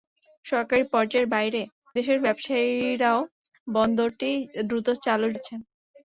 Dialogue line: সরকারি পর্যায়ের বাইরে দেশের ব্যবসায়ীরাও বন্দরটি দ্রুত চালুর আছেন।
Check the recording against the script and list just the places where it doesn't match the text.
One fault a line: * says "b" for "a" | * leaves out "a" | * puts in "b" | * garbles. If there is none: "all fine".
all fine